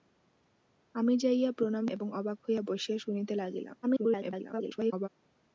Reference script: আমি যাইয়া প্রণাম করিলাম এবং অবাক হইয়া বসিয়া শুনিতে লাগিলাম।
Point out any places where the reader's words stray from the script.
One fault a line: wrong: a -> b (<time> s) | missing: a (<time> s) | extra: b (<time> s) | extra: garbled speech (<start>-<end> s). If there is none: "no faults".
missing: করিলাম (1.9 s)
extra: garbled speech (3.8-5.1 s)